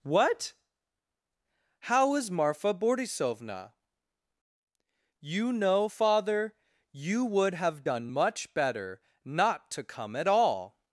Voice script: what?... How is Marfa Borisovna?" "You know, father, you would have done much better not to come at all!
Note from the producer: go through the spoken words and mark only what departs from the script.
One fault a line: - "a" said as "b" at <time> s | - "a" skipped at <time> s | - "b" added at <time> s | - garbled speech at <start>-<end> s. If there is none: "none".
none